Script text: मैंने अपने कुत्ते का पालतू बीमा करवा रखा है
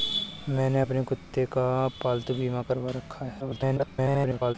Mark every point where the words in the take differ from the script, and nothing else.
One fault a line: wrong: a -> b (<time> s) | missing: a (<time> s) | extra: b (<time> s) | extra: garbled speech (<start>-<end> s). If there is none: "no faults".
extra: garbled speech (3.4-4.6 s)